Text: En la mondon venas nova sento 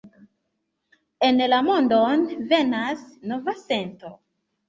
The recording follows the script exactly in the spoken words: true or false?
true